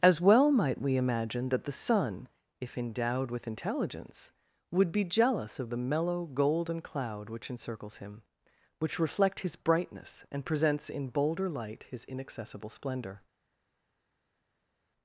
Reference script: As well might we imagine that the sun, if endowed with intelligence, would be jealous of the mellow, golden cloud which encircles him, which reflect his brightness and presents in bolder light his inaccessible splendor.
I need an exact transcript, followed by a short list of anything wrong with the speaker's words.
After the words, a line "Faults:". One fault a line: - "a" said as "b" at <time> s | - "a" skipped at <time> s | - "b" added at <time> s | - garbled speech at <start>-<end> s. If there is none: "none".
As well might we imagine that the sun, if endowed with intelligence, would be jealous of the mellow, golden cloud which encircles him, which reflect his brightness and presents in bolder light his inaccessible splendor.
Faults:
none